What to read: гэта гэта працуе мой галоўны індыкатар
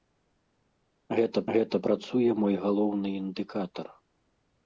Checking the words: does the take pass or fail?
pass